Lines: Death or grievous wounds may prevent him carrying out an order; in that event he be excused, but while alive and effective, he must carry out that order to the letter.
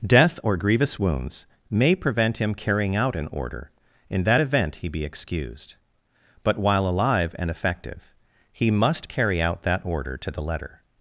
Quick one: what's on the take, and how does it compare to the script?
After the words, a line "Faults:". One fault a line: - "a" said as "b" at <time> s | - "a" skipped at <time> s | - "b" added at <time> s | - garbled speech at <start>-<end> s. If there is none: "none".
Death or grievous wounds may prevent him carrying out an order; in that event he be excused, but while alive and effective, he must carry out that order to the letter.
Faults:
none